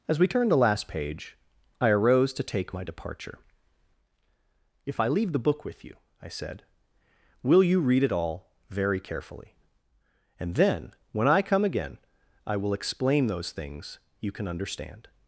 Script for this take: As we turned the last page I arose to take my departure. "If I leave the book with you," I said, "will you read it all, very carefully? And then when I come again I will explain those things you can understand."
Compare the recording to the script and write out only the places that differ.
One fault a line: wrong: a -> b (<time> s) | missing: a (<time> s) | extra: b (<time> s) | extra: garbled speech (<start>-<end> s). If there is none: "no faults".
no faults